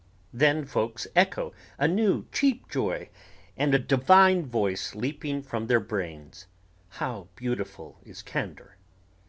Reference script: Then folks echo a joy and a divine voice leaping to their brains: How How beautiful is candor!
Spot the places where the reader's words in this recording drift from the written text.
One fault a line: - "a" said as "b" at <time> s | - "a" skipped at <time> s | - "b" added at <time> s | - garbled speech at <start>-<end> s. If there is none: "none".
- "new cheap" added at 1.9 s
- "to" said as "from" at 5.4 s
- "How" skipped at 7.3 s